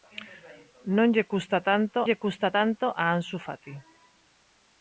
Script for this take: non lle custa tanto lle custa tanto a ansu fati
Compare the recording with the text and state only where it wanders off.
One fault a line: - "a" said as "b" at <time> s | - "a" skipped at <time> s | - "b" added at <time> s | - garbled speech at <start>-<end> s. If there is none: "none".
none